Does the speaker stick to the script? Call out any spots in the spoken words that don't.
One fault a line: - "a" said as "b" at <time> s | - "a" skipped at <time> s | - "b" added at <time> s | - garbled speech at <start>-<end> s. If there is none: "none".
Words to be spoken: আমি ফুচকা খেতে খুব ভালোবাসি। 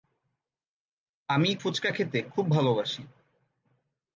none